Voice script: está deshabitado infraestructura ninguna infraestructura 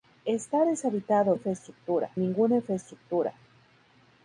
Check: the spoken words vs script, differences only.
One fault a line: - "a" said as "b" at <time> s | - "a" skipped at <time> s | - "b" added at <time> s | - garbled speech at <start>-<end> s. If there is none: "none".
none